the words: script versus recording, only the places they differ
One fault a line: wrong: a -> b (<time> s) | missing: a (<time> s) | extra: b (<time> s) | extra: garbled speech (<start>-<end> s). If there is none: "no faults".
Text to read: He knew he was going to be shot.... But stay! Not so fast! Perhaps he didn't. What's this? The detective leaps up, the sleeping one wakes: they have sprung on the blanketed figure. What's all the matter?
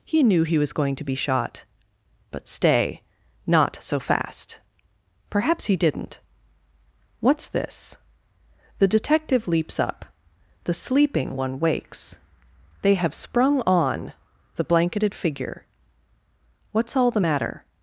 no faults